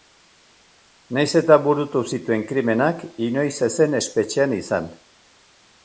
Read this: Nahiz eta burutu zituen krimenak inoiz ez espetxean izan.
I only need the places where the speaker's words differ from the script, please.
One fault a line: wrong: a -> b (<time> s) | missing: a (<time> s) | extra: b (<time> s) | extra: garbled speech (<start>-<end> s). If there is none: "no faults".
extra: zen (3.8 s)